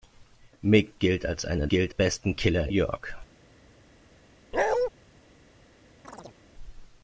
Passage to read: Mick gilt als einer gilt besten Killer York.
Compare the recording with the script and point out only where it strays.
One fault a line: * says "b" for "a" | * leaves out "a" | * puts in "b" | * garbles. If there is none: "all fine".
all fine